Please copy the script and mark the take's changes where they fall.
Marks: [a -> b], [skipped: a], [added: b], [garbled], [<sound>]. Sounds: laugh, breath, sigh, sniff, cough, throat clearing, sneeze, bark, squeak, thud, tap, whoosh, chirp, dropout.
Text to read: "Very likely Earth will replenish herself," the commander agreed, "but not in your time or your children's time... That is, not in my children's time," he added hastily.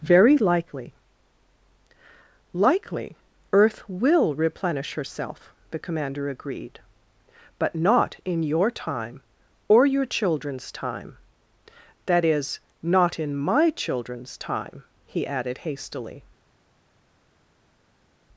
"Very likely [added: likely] Earth will replenish herself," the commander agreed, "but not in your time or your children's time... That is, not in my children's time," he added hastily.